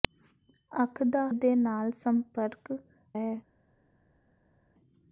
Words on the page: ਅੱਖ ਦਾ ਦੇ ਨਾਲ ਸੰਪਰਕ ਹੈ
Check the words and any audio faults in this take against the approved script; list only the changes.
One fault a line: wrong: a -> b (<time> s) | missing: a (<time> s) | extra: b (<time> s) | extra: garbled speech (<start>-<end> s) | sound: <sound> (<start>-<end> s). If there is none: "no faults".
no faults